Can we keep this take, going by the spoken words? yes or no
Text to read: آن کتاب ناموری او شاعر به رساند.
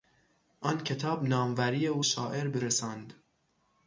yes